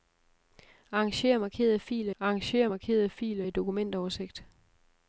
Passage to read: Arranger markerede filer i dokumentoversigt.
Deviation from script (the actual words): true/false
true